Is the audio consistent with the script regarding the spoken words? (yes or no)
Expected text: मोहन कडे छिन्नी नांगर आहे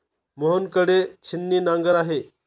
yes